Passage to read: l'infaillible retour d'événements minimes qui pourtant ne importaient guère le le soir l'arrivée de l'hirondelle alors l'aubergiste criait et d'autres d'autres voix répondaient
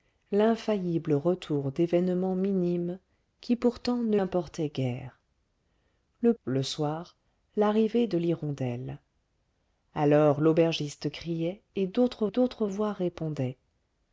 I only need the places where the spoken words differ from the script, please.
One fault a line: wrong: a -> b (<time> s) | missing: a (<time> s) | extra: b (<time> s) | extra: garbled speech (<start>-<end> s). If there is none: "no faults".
no faults